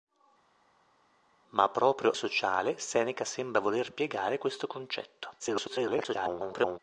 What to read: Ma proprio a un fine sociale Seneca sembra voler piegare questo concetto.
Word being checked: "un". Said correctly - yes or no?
no